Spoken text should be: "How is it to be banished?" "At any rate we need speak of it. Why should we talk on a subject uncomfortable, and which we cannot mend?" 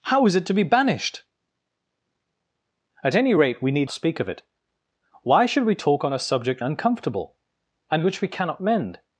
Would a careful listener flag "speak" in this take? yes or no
no